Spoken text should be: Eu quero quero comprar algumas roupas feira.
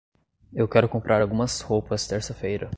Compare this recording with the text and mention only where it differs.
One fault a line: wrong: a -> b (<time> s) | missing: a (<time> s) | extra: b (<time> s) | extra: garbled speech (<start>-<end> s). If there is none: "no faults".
missing: quero (0.9 s)
extra: terça (2.1 s)